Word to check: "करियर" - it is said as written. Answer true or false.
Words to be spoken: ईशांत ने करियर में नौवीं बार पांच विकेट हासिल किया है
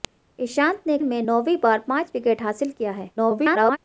false